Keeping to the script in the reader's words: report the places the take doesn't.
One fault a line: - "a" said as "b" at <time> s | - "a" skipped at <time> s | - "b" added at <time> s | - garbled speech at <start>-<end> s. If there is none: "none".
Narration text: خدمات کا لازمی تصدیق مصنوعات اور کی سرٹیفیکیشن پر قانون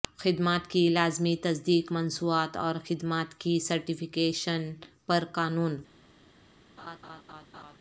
- "کا" said as "کی" at 0.7 s
- "خدمات" added at 2.9 s